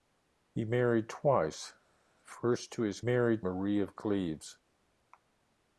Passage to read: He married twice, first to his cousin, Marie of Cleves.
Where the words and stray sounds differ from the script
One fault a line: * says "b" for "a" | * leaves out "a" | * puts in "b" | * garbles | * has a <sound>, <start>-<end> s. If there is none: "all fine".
* says "married" for "cousin"